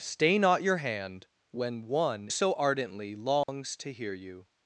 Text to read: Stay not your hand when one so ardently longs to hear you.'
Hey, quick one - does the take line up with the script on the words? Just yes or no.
yes